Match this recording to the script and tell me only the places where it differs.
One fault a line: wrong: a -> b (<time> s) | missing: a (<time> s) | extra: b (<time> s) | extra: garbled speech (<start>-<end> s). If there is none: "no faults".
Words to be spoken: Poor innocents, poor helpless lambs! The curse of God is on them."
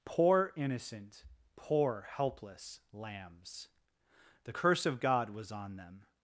wrong: innocents -> innocent (0.6 s)
wrong: is -> was (5.3 s)